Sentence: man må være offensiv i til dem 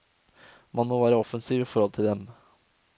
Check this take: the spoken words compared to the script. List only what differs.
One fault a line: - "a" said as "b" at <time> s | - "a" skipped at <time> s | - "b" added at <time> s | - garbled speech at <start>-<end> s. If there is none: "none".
- "forhold" added at 1.7 s